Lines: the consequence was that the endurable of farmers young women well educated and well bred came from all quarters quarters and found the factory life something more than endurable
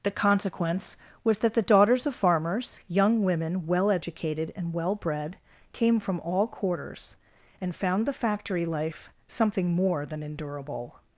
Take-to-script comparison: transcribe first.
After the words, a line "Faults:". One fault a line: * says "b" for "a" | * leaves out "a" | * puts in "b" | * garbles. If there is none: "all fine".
the consequence was that the daughters of farmers young women well educated and well bred came from all quarters and found the factory life something more than endurable
Faults:
* says "daughters" for "endurable"
* leaves out "quarters"